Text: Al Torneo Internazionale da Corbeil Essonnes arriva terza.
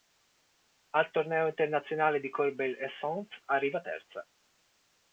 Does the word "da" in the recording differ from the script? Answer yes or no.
yes